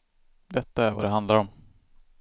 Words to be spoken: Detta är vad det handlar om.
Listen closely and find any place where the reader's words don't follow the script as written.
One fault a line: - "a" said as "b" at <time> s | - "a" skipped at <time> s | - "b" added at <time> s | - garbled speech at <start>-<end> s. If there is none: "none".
none